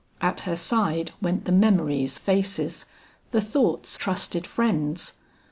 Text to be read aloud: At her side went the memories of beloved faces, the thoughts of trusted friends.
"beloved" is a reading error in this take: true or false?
true